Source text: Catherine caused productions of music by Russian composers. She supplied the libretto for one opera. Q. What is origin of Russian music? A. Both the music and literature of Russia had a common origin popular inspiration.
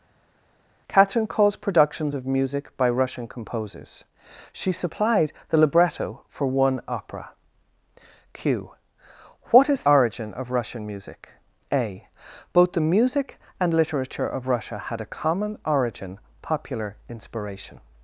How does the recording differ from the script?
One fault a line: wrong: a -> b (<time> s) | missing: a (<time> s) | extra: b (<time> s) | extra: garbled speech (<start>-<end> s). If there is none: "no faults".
no faults